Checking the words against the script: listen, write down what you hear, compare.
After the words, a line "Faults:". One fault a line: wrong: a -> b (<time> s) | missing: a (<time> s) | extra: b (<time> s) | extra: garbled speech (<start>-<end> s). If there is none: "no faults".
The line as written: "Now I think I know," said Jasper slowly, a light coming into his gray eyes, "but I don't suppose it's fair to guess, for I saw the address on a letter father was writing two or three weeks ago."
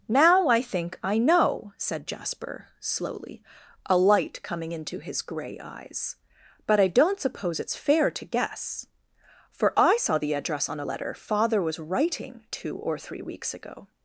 "Now I think I know," said Jasper slowly, a light coming into his gray eyes, "but I don't suppose it's fair to guess, for I saw the address on a letter father was writing two or three weeks ago."
Faults:
no faults